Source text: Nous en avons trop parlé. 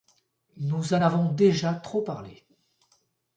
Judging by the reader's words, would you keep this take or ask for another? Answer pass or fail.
fail